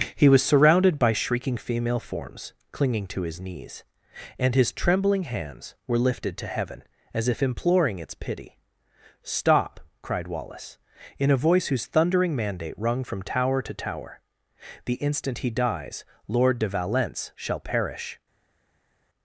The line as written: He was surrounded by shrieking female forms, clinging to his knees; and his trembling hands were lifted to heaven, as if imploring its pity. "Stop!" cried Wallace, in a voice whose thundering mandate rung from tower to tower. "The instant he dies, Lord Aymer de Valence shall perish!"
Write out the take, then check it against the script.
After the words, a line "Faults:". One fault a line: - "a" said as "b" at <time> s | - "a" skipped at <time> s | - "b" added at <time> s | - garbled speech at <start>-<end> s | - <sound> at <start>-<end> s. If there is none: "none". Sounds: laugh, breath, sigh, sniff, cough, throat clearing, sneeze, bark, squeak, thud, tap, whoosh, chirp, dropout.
He was surrounded by shrieking female forms, clinging to his knees; and his trembling hands were lifted to heaven, as if imploring its pity. "Stop!" cried Wallace, in a voice whose thundering mandate rung from tower to tower. "The instant he dies, Lord de Valence shall perish!"
Faults:
- "Aymer" skipped at 16.6 s